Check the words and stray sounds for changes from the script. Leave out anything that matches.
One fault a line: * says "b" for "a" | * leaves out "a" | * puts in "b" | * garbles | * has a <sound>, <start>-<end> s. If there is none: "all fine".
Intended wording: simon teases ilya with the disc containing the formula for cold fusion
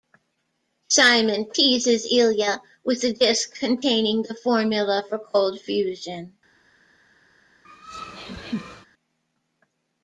* has a laugh, 7.6-8.9 s